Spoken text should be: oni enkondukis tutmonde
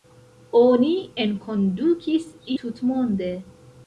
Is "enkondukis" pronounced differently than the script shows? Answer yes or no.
no